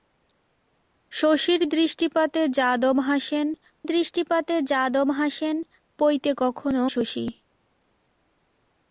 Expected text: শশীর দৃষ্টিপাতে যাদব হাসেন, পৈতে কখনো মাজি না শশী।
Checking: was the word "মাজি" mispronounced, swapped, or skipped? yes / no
yes